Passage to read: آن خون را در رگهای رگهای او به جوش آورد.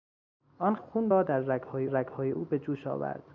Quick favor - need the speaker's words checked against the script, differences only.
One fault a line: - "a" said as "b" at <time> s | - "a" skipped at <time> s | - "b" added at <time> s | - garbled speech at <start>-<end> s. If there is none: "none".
none